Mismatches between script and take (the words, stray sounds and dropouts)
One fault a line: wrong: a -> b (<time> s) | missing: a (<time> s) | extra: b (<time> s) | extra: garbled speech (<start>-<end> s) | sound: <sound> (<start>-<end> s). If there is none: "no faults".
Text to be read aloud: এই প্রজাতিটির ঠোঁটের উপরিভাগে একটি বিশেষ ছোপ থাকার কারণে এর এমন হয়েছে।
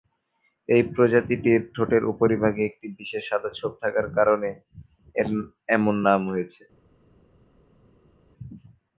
extra: সাদা (3.3 s)
extra: নাম (6.1 s)